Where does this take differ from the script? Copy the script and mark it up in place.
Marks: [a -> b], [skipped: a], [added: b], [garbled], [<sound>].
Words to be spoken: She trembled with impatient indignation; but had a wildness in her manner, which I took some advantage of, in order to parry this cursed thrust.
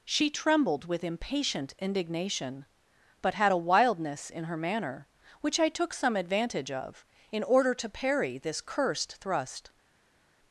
She trembled with impatient indignation; but had a wildness in her manner, which I took some advantage of, in order to parry this cursed thrust.